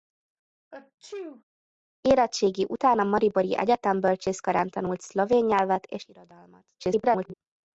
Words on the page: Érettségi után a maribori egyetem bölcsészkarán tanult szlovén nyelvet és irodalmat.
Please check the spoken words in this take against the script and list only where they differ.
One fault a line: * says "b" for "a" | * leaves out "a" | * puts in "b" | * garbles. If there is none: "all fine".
* garbles